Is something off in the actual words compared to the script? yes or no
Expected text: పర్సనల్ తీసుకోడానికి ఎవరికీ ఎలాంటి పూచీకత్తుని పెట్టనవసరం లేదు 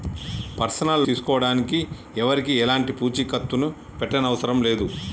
no